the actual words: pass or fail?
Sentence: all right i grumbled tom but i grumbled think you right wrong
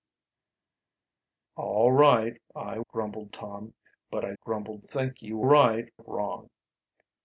pass